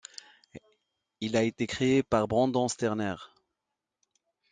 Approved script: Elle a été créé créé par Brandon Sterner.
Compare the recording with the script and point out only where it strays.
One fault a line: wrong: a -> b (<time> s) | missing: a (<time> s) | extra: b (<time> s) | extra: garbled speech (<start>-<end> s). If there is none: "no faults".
wrong: Elle -> Il (1.2 s)
missing: créé (2.0 s)